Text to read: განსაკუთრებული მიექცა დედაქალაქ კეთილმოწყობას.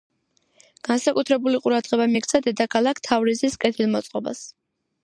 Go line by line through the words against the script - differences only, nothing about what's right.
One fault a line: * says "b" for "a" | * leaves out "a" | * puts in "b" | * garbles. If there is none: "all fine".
* puts in "ყურადღება"
* puts in "თავრიზის"